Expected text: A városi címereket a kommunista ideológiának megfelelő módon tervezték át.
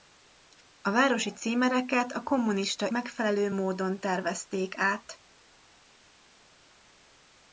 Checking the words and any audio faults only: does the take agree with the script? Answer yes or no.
no